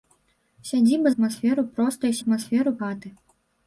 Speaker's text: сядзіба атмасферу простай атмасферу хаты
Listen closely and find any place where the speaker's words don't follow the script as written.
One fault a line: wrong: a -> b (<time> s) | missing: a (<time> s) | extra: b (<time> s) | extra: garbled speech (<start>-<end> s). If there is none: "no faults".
no faults